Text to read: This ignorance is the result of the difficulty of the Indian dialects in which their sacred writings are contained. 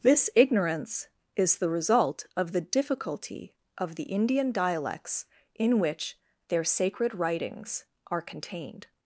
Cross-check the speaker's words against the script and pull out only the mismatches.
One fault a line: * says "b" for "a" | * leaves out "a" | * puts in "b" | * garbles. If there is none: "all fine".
all fine